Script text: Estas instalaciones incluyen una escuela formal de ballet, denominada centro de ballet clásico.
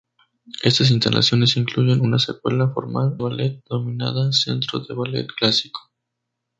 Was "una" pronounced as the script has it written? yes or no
yes